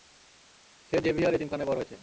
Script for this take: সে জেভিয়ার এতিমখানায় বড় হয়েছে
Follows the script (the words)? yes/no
yes